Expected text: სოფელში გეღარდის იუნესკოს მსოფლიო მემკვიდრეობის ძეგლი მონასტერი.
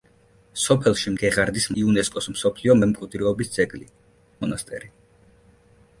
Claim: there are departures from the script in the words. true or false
false